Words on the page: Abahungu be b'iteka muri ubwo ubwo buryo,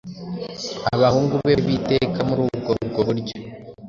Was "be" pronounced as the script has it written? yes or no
yes